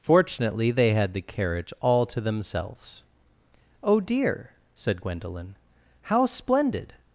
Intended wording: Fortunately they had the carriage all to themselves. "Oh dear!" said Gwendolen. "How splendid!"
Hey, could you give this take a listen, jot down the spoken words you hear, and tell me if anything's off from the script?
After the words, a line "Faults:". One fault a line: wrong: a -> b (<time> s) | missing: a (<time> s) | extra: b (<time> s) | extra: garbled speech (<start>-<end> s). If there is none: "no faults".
Fortunately they had the carriage all to themselves. "Oh dear!" said Gwendolen. "How splendid!"
Faults:
no faults